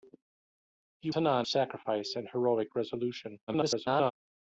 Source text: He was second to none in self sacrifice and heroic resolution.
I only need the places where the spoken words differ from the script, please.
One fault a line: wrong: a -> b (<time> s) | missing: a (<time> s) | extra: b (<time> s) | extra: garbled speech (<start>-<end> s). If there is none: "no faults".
missing: was second (1.1 s)
missing: in self (1.5 s)
extra: garbled speech (3.5-4.1 s)